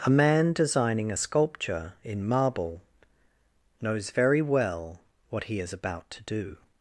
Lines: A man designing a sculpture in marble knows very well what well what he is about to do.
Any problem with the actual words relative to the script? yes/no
yes